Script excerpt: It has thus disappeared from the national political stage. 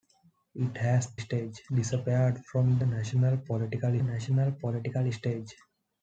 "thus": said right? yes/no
no